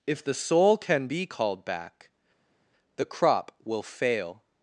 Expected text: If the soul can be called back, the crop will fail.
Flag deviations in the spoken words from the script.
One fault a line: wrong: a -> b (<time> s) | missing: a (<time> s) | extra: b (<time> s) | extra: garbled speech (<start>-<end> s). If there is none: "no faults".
no faults